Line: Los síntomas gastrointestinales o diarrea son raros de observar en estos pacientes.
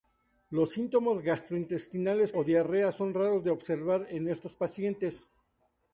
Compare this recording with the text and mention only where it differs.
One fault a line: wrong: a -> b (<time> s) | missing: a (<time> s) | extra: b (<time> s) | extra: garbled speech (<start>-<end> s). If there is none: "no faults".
no faults